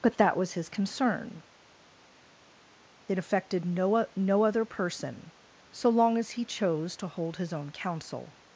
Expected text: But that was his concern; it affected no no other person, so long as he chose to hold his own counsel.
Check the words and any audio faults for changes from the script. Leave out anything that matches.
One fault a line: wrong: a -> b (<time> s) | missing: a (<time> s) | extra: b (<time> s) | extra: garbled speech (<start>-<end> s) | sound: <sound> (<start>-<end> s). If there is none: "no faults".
no faults